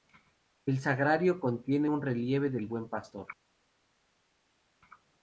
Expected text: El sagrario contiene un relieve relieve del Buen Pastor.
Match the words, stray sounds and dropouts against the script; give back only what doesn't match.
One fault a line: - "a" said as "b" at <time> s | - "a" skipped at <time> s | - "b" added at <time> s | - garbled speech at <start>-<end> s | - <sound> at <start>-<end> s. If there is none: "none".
- "relieve" skipped at 2.5 s